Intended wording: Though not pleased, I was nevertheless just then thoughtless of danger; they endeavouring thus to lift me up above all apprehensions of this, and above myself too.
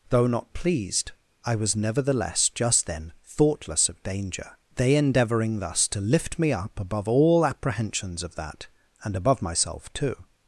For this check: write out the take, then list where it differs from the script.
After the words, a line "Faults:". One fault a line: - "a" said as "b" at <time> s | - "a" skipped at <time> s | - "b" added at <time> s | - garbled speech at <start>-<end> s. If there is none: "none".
Though not pleased, I was nevertheless just then thoughtless of danger; they endeavouring thus to lift me up above all apprehensions of that, and above myself too.
Faults:
- "this" said as "that" at 8.3 s